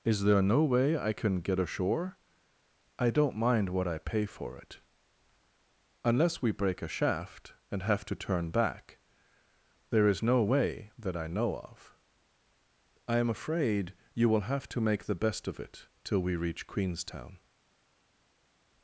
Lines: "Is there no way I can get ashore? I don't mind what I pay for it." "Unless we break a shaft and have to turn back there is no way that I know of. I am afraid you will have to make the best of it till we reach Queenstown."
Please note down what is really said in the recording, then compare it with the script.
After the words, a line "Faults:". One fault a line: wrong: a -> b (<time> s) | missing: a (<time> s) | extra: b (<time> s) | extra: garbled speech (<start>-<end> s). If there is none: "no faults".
"Is there no way I can get ashore? I don't mind what I pay for it." "Unless we break a shaft and have to turn back there is no way that I know of. I am afraid you will have to make the best of it till we reach Queenstown."
Faults:
no faults